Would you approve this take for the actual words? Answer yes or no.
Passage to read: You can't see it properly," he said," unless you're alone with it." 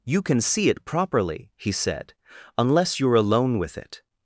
no